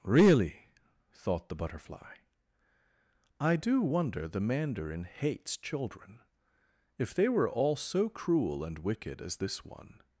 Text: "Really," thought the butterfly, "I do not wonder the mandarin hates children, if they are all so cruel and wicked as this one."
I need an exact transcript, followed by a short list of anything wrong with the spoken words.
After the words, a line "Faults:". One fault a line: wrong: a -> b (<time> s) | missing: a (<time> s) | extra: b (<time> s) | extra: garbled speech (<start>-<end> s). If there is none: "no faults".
"Really," thought the butterfly, "I do wonder the mandarin hates children, if they were all so cruel and wicked as this one."
Faults:
missing: not (3.8 s)
wrong: are -> were (7.3 s)